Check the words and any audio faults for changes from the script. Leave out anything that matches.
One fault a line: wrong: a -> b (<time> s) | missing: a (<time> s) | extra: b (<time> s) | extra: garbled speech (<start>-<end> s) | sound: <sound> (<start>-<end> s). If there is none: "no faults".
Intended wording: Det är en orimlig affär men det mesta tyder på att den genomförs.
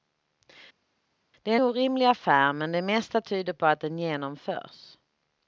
missing: en (1.6 s)